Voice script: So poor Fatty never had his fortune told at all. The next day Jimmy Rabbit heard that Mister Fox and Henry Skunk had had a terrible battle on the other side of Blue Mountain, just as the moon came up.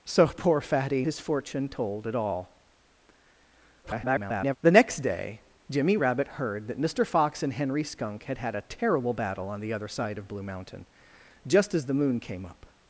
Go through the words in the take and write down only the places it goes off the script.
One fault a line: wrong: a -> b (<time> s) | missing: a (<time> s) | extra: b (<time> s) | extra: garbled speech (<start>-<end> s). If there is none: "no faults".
missing: never had (1.1 s)
extra: garbled speech (3.8-4.6 s)